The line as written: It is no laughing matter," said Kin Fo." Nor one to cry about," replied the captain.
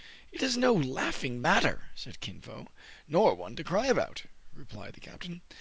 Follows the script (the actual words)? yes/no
yes